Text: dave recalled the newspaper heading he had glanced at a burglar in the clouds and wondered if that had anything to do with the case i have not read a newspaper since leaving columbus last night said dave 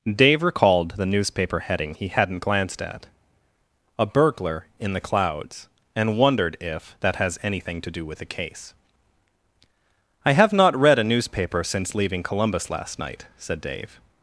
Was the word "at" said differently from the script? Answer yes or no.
no